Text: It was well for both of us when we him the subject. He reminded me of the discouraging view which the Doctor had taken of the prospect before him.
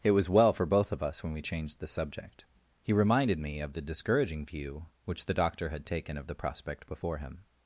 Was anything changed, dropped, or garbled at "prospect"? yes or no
no